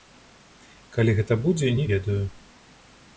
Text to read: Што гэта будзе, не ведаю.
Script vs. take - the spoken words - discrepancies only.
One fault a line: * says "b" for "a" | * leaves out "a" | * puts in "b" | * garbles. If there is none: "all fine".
* says "Калі" for "Што"